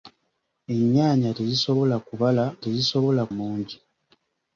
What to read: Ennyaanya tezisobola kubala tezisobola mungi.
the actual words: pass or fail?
pass